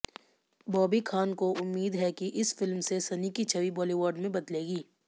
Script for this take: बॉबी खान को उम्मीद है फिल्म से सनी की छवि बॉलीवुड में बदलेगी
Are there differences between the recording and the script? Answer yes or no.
yes